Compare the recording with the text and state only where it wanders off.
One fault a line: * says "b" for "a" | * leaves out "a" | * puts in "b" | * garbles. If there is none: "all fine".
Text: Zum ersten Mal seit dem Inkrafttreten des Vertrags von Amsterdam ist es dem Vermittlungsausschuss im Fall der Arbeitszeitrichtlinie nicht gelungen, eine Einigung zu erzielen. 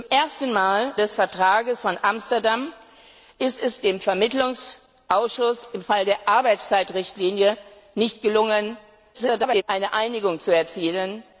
* leaves out "seit dem Inkrafttreten"
* garbles